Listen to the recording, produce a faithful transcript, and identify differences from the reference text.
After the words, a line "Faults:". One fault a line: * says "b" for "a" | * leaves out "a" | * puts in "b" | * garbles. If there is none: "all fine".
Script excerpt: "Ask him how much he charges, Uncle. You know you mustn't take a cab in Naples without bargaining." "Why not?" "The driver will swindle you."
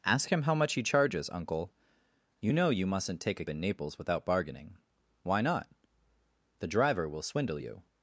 "Ask him how much he charges, Uncle. You know you mustn't take a in Naples without bargaining." "Why not?" "The driver will swindle you."
Faults:
* leaves out "cab"